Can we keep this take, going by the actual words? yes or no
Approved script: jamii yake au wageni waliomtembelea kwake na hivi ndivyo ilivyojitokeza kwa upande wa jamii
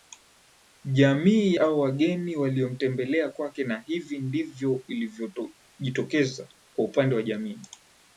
no